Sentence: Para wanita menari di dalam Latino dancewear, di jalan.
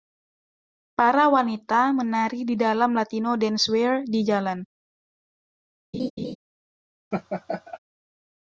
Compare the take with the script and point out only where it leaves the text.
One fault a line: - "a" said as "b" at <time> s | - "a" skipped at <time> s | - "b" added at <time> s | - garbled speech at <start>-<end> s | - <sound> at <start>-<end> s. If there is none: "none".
- laugh at 5.9-6.4 s
- laugh at 7.1-7.8 s